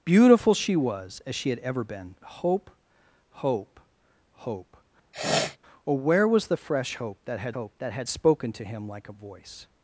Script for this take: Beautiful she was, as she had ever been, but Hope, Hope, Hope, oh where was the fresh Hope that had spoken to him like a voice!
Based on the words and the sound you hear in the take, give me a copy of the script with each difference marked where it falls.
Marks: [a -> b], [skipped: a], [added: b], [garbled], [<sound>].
Beautiful she was, as she had ever been, [skipped: but] Hope, Hope, Hope, [sniff] oh where was the fresh Hope that had [added: Hope that had] spoken to him like a voice!